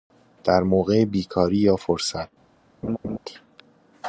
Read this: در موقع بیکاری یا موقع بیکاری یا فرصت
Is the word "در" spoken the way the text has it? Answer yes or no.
yes